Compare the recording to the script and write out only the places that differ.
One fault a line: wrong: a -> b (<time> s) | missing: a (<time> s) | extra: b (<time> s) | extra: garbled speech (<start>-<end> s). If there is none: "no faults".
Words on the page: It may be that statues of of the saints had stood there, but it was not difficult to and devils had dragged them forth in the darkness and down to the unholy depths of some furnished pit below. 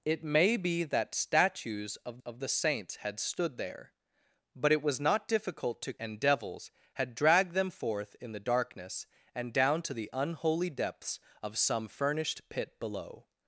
no faults